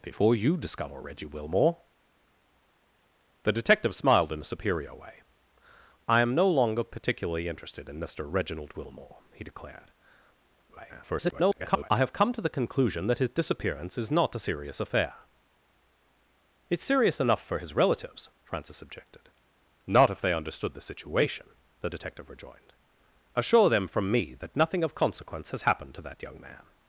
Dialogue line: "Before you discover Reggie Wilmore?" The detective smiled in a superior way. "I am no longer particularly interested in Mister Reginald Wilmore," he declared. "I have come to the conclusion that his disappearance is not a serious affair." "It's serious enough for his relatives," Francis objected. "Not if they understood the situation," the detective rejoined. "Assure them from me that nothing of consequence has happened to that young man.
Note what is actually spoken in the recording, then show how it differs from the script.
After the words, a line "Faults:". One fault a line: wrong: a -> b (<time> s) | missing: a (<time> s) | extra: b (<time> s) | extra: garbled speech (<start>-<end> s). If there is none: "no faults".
"Before you discover Reggie Wilmore?" The detective smiled in a superior way. "I am no longer particularly interested in Mister Reginald Wilmore," he declared. [garbled] "I have come to the conclusion that his disappearance is not a serious affair." "It's serious enough for his relatives," Francis objected. "Not if they understood the situation," the detective rejoined. "Assure them from me that nothing of consequence has happened to that young man.
Faults:
extra: garbled speech (10.7-11.9 s)